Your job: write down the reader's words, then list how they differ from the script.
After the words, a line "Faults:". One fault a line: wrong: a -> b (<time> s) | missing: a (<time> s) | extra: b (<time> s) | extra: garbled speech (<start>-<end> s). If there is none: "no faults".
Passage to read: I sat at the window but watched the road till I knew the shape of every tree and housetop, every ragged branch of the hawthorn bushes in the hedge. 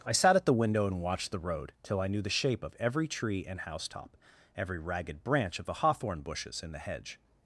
I sat at the window and watched the road till I knew the shape of every tree and housetop, every ragged branch of the hawthorn bushes in the hedge.
Faults:
wrong: but -> and (0.9 s)